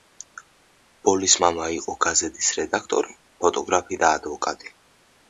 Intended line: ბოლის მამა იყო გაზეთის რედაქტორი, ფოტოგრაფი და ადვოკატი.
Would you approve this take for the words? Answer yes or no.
yes